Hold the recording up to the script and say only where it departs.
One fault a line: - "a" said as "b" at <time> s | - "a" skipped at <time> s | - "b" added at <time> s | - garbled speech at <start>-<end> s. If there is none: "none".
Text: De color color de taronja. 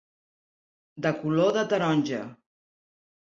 - "color" skipped at 1.5 s